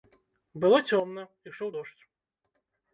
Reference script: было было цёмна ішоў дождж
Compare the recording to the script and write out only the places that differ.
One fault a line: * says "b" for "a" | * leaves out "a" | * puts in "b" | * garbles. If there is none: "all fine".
* leaves out "было"